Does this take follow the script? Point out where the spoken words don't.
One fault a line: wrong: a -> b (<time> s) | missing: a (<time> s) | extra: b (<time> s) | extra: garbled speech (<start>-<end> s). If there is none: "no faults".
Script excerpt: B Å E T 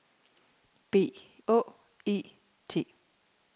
no faults